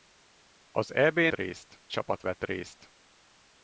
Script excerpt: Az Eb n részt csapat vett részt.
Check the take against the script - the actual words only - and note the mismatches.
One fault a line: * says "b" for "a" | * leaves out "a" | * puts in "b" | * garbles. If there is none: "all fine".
all fine